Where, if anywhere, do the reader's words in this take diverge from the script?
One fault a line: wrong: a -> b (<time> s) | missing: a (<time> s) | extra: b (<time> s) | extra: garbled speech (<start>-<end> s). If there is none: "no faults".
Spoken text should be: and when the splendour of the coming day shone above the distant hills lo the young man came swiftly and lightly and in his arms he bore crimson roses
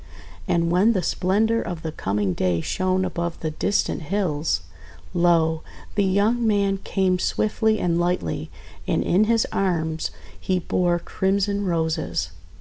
no faults